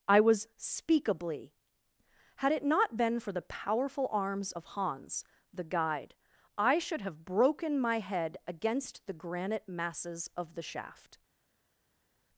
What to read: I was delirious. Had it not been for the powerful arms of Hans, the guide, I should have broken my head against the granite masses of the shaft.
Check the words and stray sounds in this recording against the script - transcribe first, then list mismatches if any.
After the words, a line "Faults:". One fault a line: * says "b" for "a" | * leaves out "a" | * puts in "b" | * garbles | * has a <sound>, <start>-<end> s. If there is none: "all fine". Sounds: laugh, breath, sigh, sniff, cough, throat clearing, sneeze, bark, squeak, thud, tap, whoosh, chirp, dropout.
I was speakably. Had it not been for the powerful arms of Hans, the guide, I should have broken my head against the granite masses of the shaft.
Faults:
* says "speakably" for "delirious"